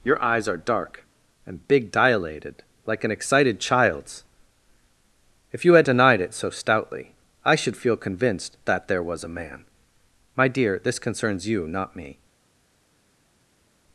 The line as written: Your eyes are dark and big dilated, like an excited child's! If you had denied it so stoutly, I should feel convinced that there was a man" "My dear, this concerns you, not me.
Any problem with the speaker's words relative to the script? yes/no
no